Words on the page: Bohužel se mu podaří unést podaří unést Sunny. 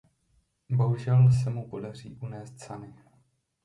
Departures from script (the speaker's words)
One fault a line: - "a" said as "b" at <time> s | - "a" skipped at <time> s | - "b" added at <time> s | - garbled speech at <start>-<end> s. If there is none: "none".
- "podaří unést" skipped at 2.6 s